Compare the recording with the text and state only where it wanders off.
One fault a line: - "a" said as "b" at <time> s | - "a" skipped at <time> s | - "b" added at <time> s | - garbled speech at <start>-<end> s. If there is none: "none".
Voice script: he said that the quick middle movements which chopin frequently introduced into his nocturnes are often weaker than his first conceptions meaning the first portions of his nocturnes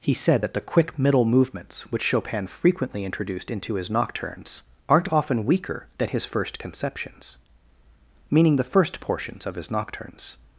- "are" said as "aren't" at 4.9 s